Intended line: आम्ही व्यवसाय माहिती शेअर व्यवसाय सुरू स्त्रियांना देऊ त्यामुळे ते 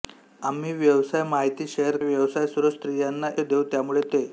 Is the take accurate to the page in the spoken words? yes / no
yes